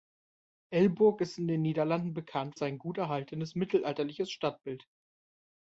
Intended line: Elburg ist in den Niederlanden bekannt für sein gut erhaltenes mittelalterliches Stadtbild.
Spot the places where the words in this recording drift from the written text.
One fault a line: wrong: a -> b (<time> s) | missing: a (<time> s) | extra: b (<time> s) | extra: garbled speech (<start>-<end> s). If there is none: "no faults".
missing: für (2.5 s)